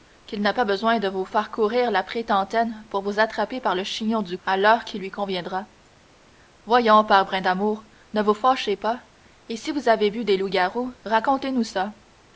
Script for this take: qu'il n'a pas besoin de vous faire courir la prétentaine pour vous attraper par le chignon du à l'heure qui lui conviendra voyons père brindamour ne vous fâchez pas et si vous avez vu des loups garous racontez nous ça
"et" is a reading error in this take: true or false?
false